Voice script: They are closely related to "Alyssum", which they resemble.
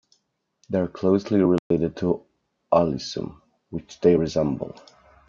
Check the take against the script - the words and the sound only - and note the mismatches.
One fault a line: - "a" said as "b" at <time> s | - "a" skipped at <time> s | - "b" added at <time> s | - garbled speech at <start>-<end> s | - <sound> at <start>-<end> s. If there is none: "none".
- dropout at 1.6-1.7 s